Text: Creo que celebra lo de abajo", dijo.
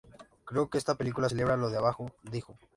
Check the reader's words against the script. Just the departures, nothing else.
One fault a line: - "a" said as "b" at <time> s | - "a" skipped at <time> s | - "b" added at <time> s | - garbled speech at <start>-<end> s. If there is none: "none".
- "esta película" added at 0.8 s